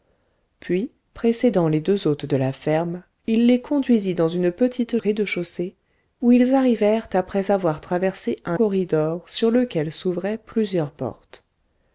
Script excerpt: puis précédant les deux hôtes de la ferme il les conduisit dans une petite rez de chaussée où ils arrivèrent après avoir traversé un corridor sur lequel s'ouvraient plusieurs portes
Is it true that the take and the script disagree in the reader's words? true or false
false